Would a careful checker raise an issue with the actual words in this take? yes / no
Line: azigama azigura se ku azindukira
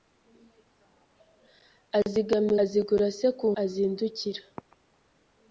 no